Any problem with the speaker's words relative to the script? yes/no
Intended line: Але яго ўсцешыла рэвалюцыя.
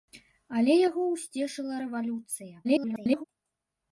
yes